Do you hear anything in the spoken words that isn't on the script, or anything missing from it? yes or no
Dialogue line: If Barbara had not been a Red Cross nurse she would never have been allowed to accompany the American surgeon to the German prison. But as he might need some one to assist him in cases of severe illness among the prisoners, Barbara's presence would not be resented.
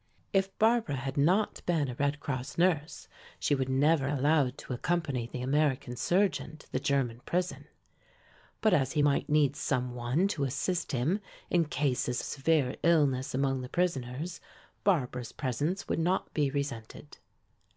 yes